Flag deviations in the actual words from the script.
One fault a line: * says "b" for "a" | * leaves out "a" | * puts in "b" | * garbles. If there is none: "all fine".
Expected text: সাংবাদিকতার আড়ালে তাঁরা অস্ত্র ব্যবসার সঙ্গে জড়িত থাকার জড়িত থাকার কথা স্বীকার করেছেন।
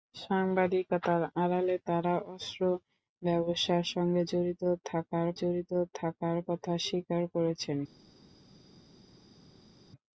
all fine